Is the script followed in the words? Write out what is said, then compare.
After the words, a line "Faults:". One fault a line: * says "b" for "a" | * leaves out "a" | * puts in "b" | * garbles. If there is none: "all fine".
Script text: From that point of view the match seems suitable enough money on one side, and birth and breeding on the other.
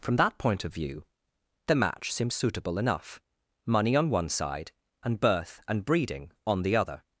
From that point of view the match seems suitable enough money on one side, and birth and breeding on the other.
Faults:
all fine